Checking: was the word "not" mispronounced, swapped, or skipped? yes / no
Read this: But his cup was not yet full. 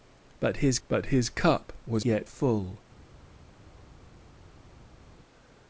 yes